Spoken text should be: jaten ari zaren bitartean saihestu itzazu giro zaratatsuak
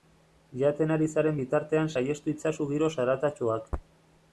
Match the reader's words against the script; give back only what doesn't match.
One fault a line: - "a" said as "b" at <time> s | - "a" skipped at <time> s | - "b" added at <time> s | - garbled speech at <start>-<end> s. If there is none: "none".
none